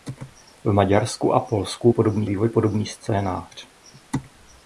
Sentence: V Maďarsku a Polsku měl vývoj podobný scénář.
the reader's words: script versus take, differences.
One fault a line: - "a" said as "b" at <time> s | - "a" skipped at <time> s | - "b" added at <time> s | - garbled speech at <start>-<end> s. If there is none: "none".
- "měl" said as "podobný" at 1.9 s